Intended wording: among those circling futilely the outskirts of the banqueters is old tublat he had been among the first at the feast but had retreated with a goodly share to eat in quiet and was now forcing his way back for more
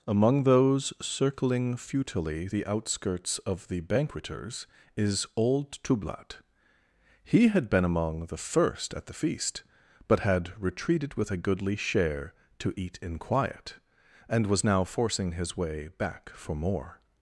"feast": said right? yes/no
yes